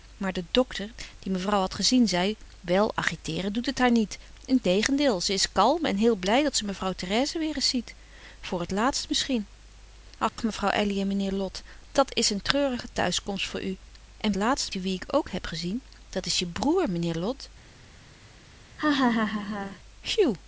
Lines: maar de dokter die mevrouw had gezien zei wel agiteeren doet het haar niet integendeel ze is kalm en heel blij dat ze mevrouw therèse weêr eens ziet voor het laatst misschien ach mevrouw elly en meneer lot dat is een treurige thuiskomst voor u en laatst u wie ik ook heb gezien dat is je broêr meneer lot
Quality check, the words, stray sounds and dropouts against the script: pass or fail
fail